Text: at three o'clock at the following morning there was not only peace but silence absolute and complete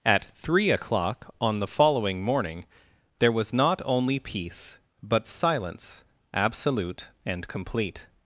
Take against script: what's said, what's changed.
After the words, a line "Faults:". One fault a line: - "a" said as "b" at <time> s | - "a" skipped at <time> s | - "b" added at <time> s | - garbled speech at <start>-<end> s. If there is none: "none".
at three o'clock on the following morning there was not only peace but silence absolute and complete
Faults:
- "at" said as "on" at 1.4 s